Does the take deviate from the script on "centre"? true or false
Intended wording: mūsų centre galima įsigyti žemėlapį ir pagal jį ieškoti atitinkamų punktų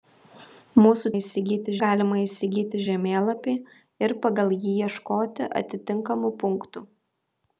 true